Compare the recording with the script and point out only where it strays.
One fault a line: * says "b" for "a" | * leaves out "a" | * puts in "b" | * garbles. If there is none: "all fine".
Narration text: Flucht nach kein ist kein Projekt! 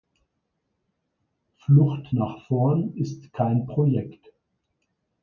* says "vorn" for "kein"